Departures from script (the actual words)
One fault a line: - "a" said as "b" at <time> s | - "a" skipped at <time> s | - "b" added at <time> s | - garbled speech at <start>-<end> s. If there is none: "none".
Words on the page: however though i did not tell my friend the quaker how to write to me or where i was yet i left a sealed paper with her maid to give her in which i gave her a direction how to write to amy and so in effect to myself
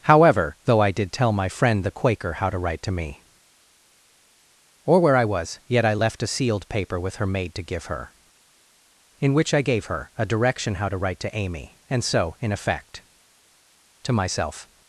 - "not" skipped at 1.1 s